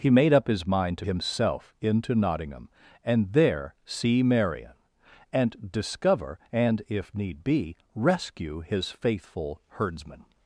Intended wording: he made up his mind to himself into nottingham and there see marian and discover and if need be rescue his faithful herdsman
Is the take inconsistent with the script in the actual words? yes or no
no